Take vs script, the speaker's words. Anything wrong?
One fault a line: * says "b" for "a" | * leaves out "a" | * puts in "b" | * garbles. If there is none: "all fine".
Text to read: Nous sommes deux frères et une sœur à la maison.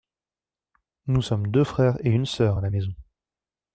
all fine